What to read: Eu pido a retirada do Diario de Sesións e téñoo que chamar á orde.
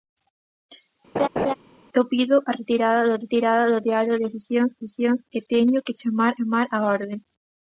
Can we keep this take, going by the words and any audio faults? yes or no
no